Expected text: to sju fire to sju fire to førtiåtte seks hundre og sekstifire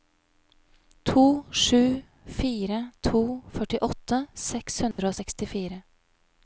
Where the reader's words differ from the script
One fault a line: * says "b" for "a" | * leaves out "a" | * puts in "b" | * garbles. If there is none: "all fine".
* leaves out "sju fire to"